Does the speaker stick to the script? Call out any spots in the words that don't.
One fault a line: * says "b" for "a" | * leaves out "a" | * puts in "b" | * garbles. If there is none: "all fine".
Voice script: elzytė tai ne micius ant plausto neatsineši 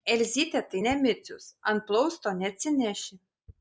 all fine